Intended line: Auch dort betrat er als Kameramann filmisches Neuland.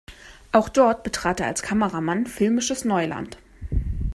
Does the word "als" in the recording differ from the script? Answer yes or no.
no